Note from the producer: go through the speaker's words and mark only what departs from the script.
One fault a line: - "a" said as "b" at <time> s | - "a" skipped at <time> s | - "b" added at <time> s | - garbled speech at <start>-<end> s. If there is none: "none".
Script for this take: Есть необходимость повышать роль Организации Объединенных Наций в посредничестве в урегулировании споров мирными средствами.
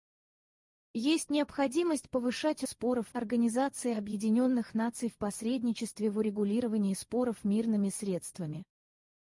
- "роль" said as "споров" at 2.6 s